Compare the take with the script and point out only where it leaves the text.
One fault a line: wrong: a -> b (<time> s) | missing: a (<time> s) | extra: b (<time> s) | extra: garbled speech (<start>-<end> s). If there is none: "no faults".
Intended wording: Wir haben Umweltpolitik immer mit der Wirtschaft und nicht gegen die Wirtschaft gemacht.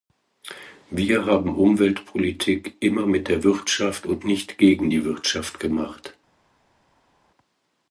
no faults